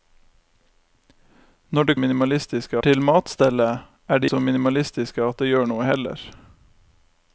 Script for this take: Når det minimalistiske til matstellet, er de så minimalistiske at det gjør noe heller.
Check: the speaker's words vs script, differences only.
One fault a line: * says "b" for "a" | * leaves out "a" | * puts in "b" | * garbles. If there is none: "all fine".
all fine